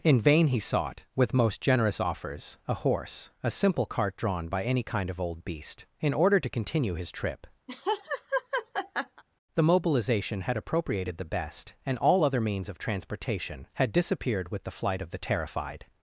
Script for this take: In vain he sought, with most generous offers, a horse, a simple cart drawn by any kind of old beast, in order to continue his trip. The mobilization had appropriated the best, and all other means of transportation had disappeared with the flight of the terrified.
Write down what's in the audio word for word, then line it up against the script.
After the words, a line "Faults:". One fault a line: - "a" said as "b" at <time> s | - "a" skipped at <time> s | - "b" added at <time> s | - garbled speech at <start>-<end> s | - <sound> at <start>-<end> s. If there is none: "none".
In vain he sought, with most generous offers, a horse, a simple cart drawn by any kind of old beast, in order to continue his trip. The mobilization had appropriated the best, and all other means of transportation had disappeared with the flight of the terrified.
Faults:
- laugh at 7.7-9.2 s